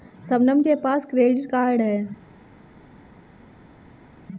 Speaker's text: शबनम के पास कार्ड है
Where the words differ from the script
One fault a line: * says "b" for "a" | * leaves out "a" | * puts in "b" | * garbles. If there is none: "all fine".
* puts in "क्रेडिट"